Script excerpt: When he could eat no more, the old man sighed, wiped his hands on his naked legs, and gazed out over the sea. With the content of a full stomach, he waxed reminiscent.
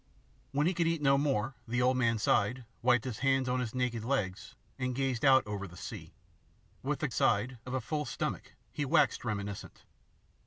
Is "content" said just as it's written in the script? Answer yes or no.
no